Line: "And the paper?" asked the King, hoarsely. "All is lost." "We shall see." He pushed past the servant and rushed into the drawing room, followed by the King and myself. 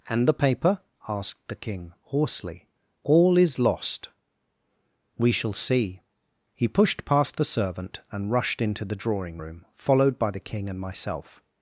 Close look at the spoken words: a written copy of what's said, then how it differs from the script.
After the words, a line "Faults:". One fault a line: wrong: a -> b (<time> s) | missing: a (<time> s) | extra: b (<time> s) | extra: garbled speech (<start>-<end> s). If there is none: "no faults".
"And the paper?" asked the King, hoarsely. "All is lost." "We shall see." He pushed past the servant and rushed into the drawing room, followed by the King and myself.
Faults:
no faults